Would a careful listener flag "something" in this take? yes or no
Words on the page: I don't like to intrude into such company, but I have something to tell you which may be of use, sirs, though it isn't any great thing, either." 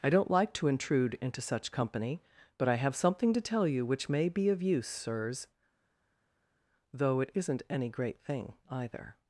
no